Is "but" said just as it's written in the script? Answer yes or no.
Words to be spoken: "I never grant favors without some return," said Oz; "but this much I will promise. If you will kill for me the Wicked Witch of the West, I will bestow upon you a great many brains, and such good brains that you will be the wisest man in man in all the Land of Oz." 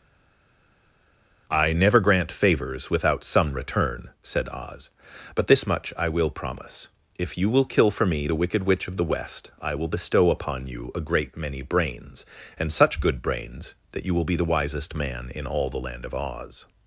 yes